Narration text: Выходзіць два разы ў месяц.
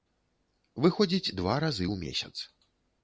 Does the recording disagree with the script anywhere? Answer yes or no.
no